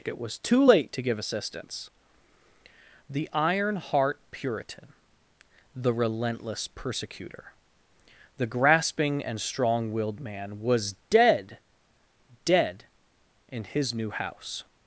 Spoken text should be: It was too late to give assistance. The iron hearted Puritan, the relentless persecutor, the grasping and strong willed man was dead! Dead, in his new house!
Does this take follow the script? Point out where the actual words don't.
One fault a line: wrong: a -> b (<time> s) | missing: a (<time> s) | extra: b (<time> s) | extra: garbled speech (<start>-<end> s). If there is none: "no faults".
wrong: hearted -> heart (3.8 s)